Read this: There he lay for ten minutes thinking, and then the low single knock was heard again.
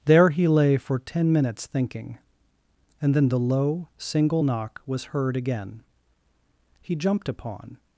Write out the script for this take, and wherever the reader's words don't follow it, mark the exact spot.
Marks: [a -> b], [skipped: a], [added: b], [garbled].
There he lay for ten minutes thinking, and then the low single knock was heard again. [added: He jumped upon]